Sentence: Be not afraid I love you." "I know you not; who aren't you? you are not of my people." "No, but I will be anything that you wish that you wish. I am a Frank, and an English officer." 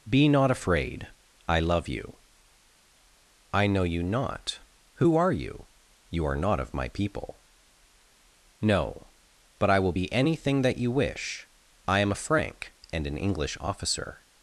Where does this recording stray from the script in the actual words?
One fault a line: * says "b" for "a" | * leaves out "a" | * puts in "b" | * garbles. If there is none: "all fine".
* says "are" for "aren't"
* leaves out "that you wish"